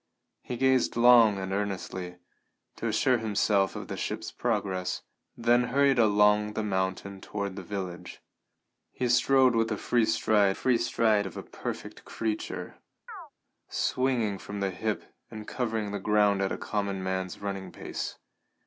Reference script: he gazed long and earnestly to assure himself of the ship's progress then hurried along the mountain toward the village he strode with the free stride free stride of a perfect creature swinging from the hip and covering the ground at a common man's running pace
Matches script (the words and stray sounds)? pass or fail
fail